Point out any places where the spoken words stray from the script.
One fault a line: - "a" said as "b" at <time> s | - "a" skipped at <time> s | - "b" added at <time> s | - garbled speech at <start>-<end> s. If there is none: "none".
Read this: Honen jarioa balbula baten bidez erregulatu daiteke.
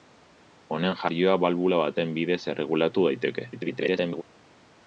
- garbled speech at 3.5-4.2 s